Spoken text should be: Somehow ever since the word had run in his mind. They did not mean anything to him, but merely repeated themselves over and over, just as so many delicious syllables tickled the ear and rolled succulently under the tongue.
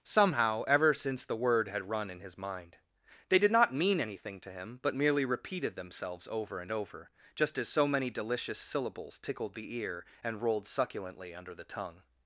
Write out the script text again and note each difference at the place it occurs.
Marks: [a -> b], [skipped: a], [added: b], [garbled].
Somehow ever since the word had run in his mind. They did not mean anything to him, but merely repeated themselves over and over, just as so many delicious syllables tickled the ear and rolled succulently under the tongue.